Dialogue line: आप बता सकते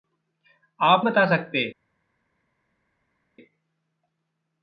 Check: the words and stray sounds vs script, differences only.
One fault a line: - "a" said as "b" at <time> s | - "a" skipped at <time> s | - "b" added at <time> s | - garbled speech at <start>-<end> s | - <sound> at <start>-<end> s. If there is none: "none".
none